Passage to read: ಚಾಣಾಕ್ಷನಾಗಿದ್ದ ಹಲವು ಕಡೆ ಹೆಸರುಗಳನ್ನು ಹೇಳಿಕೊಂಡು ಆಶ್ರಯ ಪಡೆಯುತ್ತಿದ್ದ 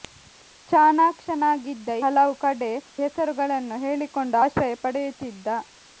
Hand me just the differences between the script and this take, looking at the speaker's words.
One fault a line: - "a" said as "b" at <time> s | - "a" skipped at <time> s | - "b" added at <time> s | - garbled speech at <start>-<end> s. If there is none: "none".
none